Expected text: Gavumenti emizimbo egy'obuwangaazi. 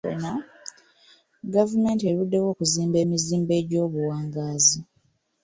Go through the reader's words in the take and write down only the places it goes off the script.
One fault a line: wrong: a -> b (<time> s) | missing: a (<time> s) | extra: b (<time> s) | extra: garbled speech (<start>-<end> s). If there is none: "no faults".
extra: eruddewo okuzimba (2.1 s)